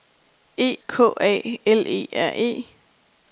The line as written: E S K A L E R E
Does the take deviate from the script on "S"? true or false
true